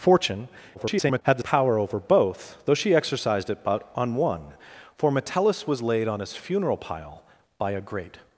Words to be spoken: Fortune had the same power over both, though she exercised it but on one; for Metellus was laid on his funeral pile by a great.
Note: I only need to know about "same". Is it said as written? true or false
false